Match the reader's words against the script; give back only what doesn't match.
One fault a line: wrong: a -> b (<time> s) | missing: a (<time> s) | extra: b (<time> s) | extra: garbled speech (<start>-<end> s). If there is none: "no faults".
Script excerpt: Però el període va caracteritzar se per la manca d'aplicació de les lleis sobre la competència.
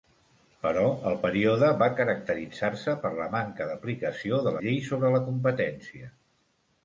missing: les (4.6 s)